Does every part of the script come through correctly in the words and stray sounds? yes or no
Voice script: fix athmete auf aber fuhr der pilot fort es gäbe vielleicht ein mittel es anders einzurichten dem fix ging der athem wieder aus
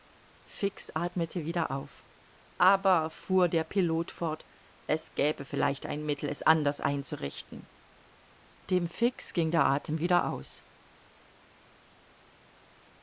no